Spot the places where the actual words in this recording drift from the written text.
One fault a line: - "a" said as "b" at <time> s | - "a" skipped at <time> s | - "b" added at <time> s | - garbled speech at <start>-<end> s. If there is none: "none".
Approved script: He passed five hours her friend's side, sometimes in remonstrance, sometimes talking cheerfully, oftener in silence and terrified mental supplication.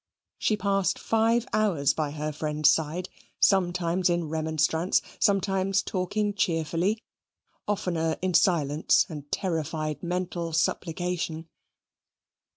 - "He" said as "She" at 0.4 s
- "by" added at 1.9 s